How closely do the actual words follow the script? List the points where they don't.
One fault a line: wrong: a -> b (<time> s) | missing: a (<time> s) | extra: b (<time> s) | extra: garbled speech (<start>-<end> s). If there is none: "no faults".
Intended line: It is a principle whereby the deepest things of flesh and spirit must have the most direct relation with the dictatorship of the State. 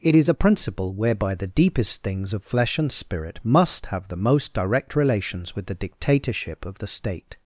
wrong: relation -> relations (4.9 s)